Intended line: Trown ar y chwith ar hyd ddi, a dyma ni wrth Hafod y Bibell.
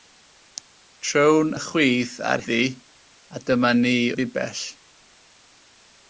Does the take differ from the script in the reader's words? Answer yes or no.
yes